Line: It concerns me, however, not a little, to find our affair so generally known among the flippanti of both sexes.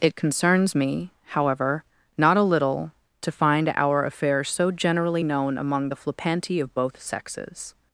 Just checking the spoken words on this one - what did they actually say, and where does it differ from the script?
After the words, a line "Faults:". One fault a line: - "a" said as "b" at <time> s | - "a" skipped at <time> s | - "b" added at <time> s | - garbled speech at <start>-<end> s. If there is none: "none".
It concerns me, however, not a little, to find our affair so generally known among the flippanti of both sexes.
Faults:
none